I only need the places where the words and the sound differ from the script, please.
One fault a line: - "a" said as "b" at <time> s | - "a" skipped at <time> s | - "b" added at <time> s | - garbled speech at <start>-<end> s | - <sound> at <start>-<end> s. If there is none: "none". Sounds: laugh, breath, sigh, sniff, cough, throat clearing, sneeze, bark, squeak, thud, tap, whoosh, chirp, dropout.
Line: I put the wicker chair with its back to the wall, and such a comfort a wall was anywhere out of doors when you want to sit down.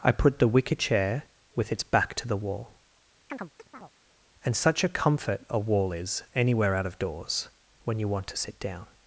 - chirp at 3.3-3.9 s
- "was" said as "is" at 5.9 s